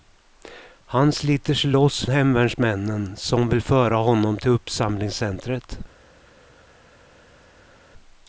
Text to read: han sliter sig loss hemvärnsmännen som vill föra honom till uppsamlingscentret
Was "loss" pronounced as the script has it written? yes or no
yes